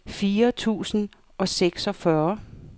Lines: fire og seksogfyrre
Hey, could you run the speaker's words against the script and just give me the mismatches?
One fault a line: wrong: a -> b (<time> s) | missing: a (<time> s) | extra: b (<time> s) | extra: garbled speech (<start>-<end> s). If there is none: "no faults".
extra: tusind (0.5 s)